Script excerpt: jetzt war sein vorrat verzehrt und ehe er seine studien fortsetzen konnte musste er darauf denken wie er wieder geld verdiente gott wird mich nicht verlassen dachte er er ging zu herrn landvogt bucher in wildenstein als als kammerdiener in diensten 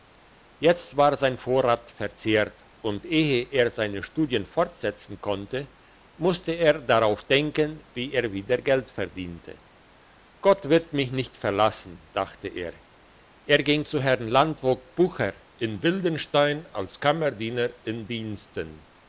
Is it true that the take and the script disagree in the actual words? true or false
true